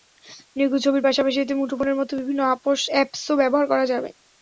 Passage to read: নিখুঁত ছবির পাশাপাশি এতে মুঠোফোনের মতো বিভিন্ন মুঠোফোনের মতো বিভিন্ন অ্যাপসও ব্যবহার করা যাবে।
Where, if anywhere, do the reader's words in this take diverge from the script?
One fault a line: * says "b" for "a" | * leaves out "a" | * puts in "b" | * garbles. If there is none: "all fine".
* leaves out "মুঠোফোনের মতো বিভিন্ন"